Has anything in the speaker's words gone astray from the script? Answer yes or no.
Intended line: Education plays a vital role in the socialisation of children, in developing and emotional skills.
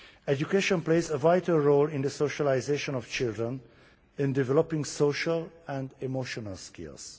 yes